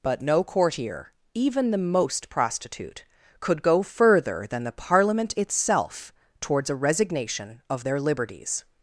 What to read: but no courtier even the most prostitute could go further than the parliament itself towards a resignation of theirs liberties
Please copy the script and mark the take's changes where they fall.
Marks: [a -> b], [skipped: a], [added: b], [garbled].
but no courtier even the most prostitute could go further than the parliament itself towards a resignation of [theirs -> their] liberties